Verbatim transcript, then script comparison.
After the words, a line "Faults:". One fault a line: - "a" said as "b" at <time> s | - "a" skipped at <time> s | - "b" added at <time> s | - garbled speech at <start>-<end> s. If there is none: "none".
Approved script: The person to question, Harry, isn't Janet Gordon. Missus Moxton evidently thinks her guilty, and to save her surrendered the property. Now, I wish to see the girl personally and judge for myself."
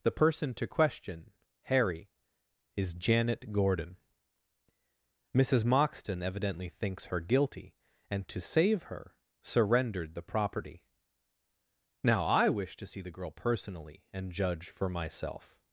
The person to question, Harry, is Janet Gordon. Missus Moxton evidently thinks her guilty, and to save her surrendered the property. Now, I wish to see the girl personally and judge for myself."
Faults:
- "isn't" said as "is" at 2.8 s